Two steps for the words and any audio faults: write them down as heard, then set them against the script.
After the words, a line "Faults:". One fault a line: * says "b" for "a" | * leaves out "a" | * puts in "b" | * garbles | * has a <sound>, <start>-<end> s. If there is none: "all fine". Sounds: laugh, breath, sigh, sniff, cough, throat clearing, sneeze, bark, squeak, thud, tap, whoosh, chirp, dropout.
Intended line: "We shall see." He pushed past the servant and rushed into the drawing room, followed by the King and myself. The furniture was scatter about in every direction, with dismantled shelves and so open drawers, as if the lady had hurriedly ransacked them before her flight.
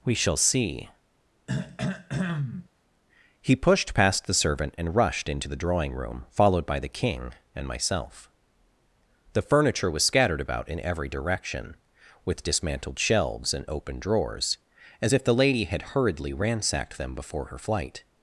"We shall see." He pushed past the servant and rushed into the drawing room, followed by the King and myself. The furniture was scattered about in every direction, with dismantled shelves and open drawers, as if the lady had hurriedly ransacked them before her flight.
Faults:
* has a throat clearing, 1.5-2.7 s
* says "scattered" for "scatter"
* leaves out "so"